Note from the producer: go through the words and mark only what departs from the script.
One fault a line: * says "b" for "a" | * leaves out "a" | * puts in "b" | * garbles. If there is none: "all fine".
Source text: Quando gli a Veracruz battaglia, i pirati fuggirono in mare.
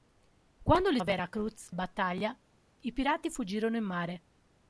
all fine